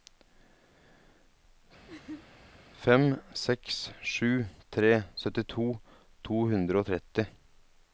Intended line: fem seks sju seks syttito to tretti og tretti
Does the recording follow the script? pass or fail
fail